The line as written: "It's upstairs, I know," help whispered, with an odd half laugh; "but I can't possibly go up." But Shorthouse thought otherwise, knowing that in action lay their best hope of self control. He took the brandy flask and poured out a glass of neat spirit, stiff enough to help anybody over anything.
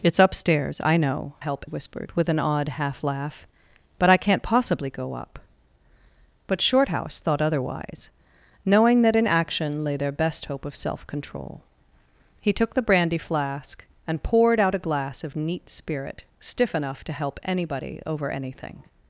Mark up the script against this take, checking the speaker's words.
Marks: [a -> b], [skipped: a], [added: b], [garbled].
"It's upstairs, I know," help whispered, with an odd half laugh; "but I can't possibly go up." But Shorthouse thought otherwise, knowing that in action lay their best hope of self control. He took the brandy flask and poured out a glass of neat spirit, stiff enough to help anybody over anything.